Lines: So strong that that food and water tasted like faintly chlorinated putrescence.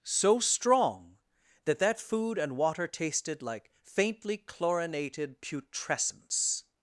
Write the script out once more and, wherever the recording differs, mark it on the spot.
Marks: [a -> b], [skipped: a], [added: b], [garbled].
So strong that that food and water tasted like faintly chlorinated putrescence.